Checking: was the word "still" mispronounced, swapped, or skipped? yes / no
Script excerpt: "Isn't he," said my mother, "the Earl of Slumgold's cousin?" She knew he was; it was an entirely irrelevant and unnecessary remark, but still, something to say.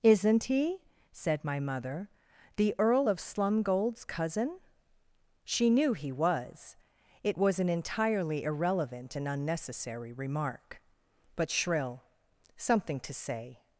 yes